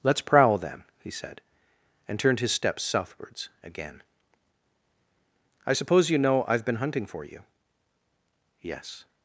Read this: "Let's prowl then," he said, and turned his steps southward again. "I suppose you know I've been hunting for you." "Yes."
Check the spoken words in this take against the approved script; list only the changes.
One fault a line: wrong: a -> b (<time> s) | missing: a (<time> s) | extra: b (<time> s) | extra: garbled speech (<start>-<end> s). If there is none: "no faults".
wrong: southward -> southwards (2.8 s)